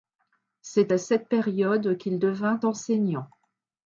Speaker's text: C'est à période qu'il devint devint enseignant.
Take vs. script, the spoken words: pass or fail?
fail